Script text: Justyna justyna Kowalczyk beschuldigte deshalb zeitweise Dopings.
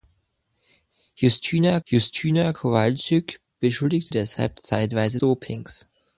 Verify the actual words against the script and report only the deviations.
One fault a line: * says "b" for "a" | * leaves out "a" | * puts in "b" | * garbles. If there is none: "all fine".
all fine